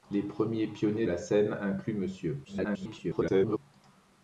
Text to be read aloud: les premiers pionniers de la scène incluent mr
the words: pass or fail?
fail